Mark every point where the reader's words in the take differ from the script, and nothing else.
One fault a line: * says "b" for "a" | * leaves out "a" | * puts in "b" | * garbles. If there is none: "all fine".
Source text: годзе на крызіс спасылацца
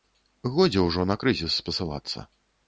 * puts in "ўжо"